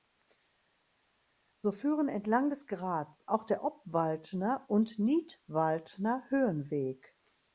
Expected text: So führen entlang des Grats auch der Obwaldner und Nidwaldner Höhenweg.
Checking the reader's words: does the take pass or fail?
pass